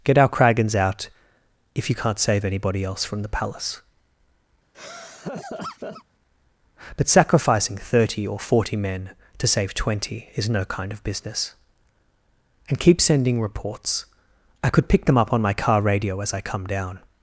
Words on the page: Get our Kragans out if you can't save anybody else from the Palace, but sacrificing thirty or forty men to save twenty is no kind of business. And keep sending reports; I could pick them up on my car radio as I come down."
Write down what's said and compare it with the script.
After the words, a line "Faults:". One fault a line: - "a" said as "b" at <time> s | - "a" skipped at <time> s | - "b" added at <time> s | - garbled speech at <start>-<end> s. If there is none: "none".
Get our Kragans out if you can't save anybody else from the Palace, but sacrificing thirty or forty men to save twenty is no kind of business. And keep sending reports; I could pick them up on my car radio as I come down."
Faults:
none